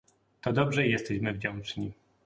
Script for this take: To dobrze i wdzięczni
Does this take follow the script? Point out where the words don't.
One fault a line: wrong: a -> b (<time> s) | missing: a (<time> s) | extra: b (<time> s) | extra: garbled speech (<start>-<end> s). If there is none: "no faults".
extra: jesteśmy (0.9 s)